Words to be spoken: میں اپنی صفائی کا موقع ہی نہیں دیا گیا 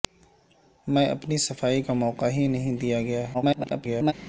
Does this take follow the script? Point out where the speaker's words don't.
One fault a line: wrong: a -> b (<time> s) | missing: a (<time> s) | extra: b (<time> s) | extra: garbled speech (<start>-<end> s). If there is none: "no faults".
extra: garbled speech (3.3-4.1 s)